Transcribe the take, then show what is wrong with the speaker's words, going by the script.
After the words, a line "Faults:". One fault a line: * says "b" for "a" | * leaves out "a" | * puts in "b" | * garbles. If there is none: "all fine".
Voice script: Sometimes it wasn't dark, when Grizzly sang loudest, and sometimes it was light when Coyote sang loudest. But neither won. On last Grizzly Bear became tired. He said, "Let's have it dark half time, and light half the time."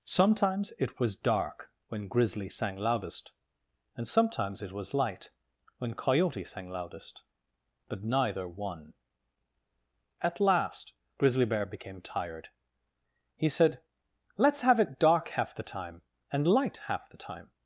Sometimes it was dark, when Grizzly sang loudest, and sometimes it was light when Coyote sang loudest. But neither won. At last Grizzly Bear became tired. He said, "Let's have it dark half the time, and light half the time."
Faults:
* says "was" for "wasn't"
* says "At" for "On"
* puts in "the"